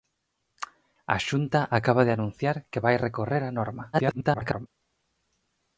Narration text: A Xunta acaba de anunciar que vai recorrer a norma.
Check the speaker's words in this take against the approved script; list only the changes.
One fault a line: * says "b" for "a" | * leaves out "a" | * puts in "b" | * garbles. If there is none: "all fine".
* garbles